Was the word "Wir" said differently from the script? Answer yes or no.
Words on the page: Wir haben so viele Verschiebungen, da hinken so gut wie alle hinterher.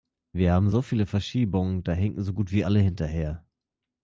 no